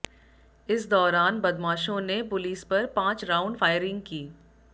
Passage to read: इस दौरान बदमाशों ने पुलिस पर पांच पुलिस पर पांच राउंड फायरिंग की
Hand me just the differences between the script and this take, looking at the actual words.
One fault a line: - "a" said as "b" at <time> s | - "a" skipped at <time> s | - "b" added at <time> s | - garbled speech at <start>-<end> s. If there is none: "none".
- "पुलिस पर पांच" skipped at 3.3 s